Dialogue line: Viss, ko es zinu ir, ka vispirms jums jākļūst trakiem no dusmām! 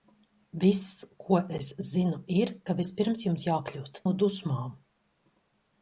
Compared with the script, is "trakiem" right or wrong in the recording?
wrong